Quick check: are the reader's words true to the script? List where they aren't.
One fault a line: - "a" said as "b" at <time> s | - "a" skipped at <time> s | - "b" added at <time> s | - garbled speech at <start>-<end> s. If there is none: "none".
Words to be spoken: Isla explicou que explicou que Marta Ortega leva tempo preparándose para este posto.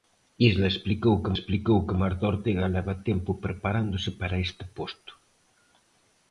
none